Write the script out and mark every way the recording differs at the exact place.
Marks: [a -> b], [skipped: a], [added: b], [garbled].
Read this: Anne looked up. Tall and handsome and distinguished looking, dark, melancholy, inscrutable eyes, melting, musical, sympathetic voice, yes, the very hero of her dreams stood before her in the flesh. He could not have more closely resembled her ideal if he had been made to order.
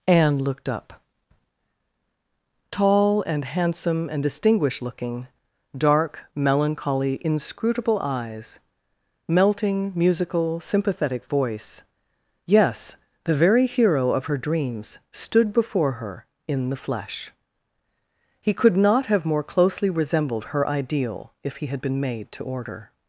Anne looked up. Tall and handsome and distinguished looking, dark, melancholy, inscrutable eyes, melting, musical, sympathetic voice, yes, the very hero of her dreams stood before her in the flesh. He could not have more closely resembled her ideal if he had been made to order.